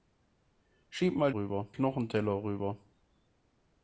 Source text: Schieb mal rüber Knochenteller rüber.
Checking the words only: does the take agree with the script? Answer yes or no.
yes